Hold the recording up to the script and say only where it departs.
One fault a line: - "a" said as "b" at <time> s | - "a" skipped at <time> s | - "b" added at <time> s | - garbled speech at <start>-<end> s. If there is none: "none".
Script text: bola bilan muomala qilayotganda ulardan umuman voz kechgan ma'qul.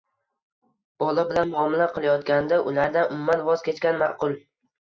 none